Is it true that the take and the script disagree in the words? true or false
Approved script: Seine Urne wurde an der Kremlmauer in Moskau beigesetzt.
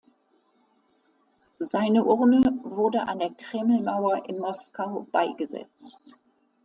false